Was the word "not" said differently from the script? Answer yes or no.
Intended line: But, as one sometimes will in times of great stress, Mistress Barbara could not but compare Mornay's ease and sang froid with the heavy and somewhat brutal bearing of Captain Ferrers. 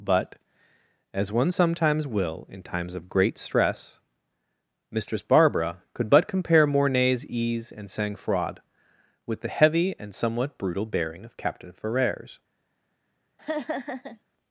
yes